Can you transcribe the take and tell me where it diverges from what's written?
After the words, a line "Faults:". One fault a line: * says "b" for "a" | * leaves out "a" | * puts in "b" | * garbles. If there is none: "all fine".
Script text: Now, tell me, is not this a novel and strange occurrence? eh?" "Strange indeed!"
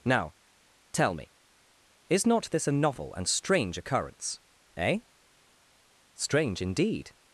Now, tell me, is not this a novel and strange occurrence? eh?" "Strange indeed!"
Faults:
all fine